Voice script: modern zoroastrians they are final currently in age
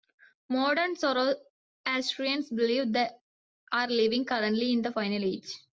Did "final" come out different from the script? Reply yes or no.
yes